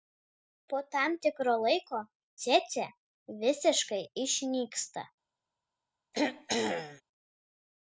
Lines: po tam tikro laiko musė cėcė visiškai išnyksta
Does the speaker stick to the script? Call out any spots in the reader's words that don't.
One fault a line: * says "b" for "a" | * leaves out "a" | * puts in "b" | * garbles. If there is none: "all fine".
* leaves out "musė"